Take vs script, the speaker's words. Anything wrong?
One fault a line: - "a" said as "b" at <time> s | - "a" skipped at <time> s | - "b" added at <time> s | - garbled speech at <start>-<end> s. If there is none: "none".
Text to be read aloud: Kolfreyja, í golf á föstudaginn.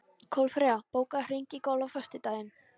- "bókaðu hring" added at 1.0 s